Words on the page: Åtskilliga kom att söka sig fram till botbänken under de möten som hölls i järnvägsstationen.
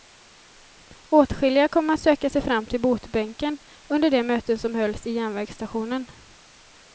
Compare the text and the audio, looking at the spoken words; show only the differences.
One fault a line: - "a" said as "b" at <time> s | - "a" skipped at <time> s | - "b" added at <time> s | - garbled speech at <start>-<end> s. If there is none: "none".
none